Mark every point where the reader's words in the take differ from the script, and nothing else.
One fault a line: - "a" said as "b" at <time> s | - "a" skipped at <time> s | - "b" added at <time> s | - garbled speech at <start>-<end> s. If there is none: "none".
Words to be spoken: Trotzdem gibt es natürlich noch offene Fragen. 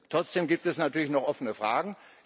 none